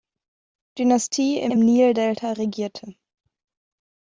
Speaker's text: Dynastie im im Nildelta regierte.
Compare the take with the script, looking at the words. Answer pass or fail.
pass